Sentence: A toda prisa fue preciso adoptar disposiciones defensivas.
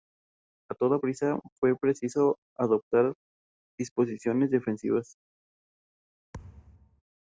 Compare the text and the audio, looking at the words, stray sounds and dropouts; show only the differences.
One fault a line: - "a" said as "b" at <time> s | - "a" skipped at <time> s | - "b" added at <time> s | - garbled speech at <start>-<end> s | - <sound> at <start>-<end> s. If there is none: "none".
- thud at 6.3-7.0 s